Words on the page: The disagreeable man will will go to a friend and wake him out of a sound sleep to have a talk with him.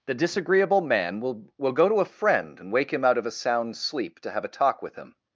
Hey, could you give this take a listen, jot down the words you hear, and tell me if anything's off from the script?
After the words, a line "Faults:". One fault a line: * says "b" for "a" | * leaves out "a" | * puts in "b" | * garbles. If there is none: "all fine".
The disagreeable man will will go to a friend and wake him out of a sound sleep to have a talk with him.
Faults:
all fine